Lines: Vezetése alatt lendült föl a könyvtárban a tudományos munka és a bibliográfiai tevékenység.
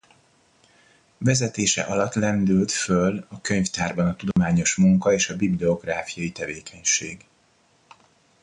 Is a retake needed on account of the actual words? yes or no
no